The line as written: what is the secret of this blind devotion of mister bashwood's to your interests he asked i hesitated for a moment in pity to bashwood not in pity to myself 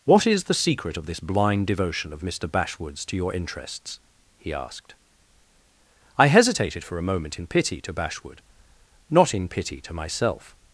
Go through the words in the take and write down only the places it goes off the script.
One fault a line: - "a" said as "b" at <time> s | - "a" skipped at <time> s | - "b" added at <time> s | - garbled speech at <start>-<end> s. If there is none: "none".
none